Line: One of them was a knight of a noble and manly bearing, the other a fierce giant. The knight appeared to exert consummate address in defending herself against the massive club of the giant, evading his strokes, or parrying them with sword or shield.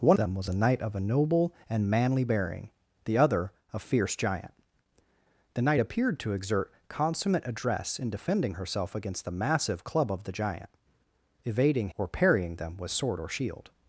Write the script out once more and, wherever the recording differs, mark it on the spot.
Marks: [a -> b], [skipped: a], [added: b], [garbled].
One [skipped: of] them was a knight of a noble and manly bearing, the other a fierce giant. The knight appeared to exert consummate address in defending herself against the massive club of the giant, evading [skipped: his strokes,] or parrying them with sword or shield.